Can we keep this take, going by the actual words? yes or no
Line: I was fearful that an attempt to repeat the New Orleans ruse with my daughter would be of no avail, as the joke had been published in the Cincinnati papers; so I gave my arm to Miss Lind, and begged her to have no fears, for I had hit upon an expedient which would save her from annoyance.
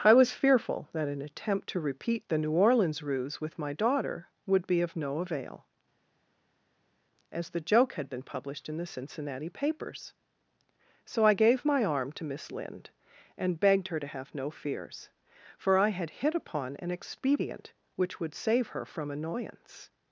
yes